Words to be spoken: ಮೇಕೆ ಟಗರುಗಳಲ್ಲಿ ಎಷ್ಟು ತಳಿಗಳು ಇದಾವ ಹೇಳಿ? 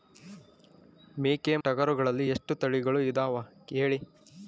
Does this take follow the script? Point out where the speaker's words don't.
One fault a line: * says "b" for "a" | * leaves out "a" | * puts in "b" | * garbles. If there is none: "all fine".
all fine